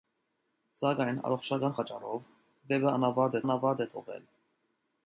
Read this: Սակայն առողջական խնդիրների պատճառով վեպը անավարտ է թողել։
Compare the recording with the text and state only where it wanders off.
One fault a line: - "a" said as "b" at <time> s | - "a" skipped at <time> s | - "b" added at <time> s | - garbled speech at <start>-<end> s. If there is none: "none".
- "խնդիրների" skipped at 1.8 s
- "անավարտ" added at 3.4 s